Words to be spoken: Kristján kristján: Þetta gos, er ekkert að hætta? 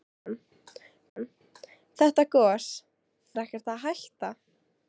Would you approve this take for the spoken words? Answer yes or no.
yes